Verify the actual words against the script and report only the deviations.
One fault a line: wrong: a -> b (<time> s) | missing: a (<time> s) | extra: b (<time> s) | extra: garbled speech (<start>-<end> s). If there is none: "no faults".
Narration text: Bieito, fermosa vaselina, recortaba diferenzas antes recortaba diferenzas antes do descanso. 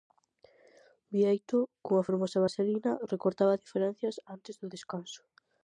extra: cunha (1.9 s)
missing: recortaba diferenzas antes (4.5 s)